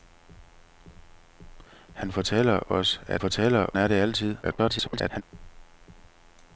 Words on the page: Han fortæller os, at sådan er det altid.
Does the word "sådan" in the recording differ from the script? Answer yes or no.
yes